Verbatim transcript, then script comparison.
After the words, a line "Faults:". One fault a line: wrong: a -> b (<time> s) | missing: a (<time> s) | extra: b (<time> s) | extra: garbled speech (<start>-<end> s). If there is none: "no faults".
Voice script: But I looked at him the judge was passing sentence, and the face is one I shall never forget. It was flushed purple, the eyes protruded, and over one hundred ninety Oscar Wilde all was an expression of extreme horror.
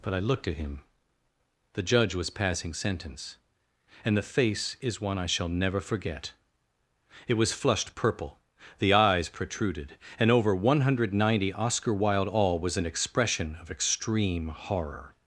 But I looked at him the judge was passing sentence, and the face is one I shall never forget. It was flushed purple, the eyes protruded, and over one hundred ninety Oscar Wilde all was an expression of extreme horror.
Faults:
no faults